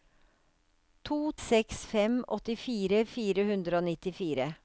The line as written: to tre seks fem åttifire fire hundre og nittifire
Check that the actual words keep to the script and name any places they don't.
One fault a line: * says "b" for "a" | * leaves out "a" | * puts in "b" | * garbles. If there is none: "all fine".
* leaves out "tre"